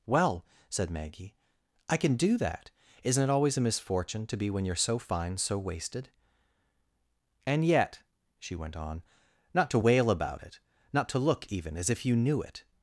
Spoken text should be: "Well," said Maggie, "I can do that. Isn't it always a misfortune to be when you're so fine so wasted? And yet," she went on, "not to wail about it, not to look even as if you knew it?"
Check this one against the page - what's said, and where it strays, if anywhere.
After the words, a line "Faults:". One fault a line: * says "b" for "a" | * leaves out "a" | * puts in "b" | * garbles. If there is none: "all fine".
"Well," said Maggie, "I can do that. Isn't it always a misfortune to be when you're so fine so wasted? And yet," she went on, "not to wail about it, not to look even as if you knew it?"
Faults:
all fine